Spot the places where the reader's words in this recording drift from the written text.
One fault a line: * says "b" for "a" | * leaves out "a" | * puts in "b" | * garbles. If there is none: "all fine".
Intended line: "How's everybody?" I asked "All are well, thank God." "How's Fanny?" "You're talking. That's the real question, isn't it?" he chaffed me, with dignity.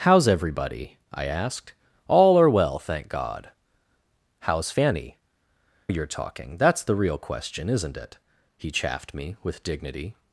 all fine